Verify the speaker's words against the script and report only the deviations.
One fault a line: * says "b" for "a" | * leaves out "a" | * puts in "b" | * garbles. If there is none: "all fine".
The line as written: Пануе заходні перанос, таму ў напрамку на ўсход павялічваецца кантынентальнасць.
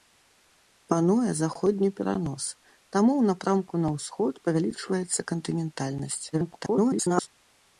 * garbles